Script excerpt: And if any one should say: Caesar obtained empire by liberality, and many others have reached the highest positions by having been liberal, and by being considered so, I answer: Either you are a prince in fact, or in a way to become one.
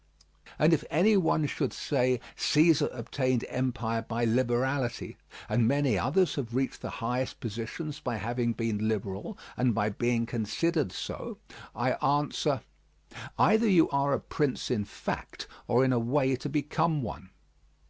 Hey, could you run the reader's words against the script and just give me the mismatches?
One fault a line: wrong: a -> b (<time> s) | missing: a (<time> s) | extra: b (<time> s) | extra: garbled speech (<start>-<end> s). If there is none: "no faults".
no faults